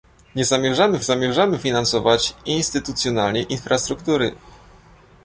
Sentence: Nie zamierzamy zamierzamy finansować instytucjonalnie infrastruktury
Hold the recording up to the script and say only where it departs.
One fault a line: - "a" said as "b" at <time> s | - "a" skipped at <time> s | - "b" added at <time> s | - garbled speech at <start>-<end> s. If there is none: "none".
none